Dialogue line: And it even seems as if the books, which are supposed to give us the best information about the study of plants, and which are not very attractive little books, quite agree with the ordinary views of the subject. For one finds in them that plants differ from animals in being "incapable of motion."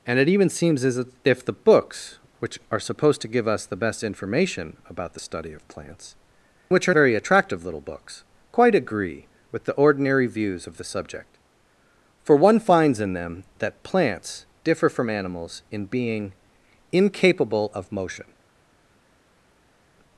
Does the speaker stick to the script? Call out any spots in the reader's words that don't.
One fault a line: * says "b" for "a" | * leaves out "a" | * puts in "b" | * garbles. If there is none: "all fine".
* leaves out "and"
* leaves out "not"